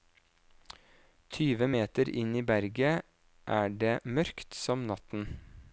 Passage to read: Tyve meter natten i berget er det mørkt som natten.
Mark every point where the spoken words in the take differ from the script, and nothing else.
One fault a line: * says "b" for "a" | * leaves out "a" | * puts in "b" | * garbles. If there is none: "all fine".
* says "inn" for "natten"